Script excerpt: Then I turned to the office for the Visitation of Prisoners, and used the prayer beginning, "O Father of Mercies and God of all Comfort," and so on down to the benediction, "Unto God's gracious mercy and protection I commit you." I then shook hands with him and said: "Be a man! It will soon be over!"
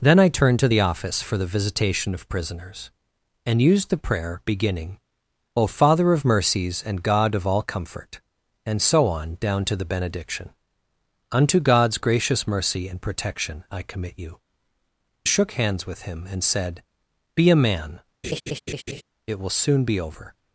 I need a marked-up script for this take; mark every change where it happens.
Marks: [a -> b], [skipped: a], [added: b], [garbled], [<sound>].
Then I turned to the office for the Visitation of Prisoners, and used the prayer beginning, "O Father of Mercies and God of all Comfort," and so on down to the benediction, "Unto God's gracious mercy and protection I commit you." [skipped: I then] shook hands with him and said: "Be a man! [laugh] It will soon be over!"